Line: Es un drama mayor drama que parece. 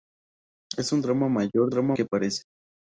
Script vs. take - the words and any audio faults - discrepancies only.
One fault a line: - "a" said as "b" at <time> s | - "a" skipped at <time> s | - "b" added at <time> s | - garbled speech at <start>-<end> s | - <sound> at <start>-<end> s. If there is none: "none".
none